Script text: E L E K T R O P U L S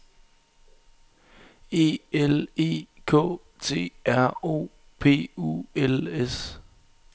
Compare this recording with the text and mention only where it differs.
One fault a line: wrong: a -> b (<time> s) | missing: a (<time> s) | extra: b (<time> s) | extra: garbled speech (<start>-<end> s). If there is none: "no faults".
no faults